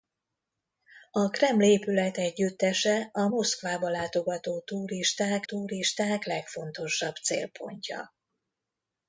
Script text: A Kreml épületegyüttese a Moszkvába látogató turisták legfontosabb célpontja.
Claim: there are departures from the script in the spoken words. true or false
true